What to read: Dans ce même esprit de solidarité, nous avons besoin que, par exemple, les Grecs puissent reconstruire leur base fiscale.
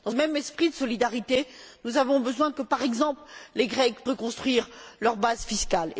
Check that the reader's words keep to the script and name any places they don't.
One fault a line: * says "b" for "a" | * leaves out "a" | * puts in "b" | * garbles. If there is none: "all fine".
* leaves out "ce"
* leaves out "puissent"